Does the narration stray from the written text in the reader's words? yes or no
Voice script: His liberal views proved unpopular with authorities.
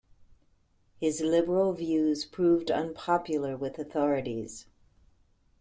no